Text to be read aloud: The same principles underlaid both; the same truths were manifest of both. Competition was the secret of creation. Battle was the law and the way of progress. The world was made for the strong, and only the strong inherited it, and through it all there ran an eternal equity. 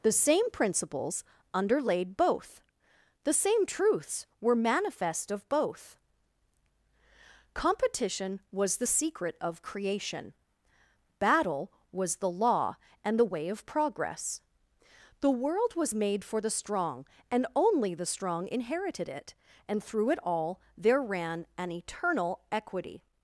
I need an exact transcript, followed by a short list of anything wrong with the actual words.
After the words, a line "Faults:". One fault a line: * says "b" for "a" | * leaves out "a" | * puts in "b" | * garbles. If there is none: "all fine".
The same principles underlaid both; the same truths were manifest of both. Competition was the secret of creation. Battle was the law and the way of progress. The world was made for the strong, and only the strong inherited it, and through it all there ran an eternal equity.
Faults:
all fine